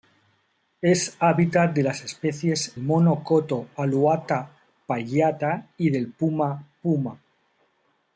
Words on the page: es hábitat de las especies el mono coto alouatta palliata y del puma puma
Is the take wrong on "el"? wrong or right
wrong